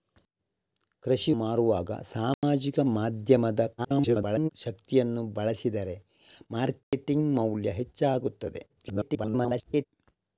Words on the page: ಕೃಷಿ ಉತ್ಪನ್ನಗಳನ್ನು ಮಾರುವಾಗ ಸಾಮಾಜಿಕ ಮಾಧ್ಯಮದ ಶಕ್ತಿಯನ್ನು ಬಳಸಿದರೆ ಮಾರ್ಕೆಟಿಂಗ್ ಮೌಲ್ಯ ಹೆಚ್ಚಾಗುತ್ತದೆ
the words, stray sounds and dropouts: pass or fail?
fail